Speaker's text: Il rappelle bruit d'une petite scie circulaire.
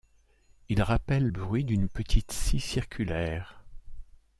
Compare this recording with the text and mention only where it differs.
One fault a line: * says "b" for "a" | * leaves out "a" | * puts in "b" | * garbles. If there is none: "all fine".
all fine